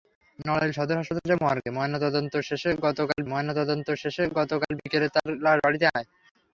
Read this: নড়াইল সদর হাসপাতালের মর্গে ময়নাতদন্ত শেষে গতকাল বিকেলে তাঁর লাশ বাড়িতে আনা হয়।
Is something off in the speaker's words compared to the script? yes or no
yes